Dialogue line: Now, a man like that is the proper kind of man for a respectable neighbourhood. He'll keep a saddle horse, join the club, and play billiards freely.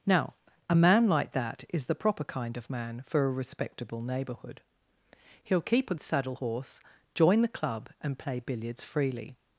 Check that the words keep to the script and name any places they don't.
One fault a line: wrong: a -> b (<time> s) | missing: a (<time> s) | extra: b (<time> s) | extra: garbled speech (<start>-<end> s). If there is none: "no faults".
no faults